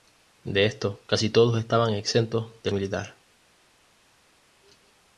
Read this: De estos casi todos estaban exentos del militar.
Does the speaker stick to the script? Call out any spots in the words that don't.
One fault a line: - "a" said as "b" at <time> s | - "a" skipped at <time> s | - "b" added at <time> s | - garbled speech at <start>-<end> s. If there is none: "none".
none